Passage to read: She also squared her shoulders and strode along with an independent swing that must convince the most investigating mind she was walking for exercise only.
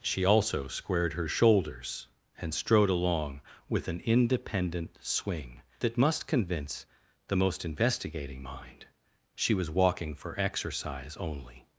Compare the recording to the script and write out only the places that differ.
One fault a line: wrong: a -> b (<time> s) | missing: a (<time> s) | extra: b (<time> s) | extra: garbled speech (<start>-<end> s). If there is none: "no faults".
no faults